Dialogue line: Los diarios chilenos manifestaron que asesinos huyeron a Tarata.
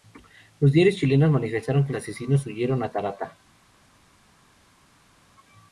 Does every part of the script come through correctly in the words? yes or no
yes